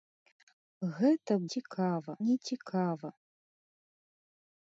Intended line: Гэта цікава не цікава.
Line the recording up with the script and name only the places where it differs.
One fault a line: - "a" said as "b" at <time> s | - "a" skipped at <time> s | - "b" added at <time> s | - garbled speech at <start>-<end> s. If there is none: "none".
none